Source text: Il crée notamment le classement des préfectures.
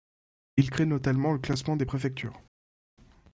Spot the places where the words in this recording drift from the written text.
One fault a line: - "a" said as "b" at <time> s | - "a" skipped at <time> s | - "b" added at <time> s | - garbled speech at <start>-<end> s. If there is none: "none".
none